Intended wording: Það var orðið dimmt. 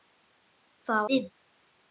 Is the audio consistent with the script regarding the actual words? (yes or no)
no